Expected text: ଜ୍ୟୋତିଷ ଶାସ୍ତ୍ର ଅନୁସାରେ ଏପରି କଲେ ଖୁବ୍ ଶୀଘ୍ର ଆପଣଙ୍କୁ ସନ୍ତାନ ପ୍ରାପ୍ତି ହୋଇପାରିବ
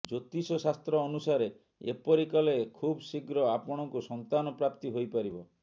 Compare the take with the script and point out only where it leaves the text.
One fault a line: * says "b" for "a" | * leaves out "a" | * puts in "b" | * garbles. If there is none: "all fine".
all fine